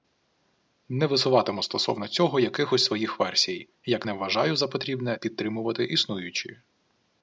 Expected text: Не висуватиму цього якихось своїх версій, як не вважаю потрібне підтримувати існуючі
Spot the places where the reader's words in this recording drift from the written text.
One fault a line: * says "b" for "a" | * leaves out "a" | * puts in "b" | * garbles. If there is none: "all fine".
* puts in "стосовно"
* puts in "за"